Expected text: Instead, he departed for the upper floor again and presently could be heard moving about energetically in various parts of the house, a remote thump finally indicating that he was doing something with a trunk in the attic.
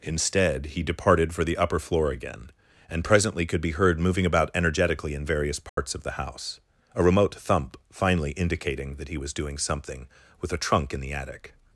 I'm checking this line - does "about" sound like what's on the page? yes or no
yes